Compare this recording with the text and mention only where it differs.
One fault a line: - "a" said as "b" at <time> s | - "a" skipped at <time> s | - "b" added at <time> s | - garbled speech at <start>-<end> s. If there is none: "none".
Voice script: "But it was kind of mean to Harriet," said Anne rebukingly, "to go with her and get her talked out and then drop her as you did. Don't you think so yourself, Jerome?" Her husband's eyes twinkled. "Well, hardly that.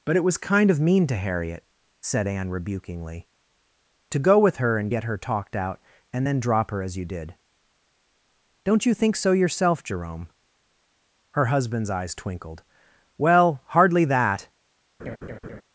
none